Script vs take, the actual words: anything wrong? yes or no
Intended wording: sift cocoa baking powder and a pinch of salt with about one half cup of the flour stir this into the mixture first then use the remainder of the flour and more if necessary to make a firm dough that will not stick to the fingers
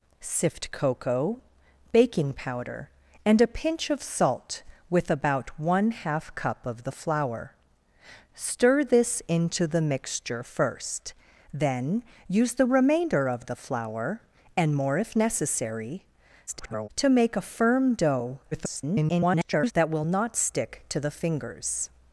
yes